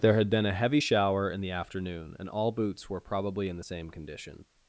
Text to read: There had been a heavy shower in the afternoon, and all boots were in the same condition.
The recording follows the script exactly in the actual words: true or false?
false